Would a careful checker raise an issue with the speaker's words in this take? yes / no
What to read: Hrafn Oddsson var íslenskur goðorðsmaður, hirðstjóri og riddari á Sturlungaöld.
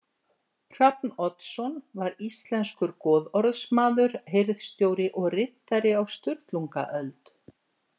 no